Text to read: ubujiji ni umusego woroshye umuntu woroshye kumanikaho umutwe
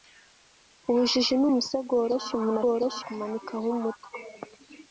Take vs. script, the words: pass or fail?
pass